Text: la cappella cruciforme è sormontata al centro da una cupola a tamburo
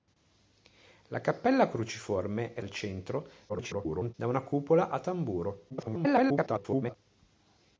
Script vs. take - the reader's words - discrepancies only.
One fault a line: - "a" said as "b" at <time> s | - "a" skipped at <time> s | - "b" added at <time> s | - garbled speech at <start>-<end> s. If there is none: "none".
- "sormontata" skipped at 2.6 s
- garbled speech at 3.5-4.1 s
- garbled speech at 5.7-7.0 s